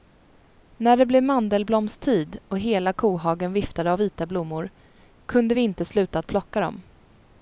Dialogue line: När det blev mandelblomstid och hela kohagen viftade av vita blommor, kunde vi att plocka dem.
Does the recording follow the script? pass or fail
fail